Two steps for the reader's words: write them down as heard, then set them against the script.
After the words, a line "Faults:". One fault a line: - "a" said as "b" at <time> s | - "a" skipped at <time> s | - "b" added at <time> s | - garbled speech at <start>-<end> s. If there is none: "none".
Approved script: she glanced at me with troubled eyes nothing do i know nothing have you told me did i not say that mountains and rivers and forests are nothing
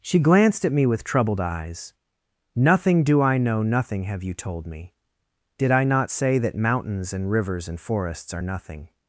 she glanced at me with troubled eyes nothing do i know nothing have you told me did i not say that mountains and rivers and forests are nothing
Faults:
none